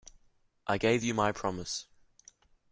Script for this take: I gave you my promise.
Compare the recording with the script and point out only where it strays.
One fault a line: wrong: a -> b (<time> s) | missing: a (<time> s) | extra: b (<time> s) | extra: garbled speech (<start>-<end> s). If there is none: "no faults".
no faults